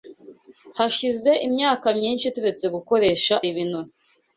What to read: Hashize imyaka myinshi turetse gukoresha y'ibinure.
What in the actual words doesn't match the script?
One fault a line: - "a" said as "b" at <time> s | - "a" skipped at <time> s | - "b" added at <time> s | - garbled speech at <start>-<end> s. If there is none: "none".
none